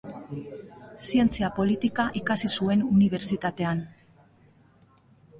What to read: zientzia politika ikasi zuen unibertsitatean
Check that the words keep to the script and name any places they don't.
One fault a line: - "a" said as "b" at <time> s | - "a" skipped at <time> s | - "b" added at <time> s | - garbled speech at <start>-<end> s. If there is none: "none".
none